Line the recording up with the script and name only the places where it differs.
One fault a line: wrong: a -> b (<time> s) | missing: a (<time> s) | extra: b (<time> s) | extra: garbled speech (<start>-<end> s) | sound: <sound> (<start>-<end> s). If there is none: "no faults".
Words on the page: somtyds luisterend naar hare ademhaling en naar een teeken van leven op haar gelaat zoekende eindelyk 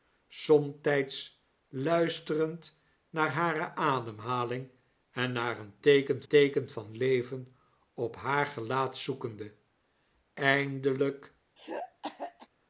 extra: teeken (6.3 s)
sound: throat clearing (11.6-12.5 s)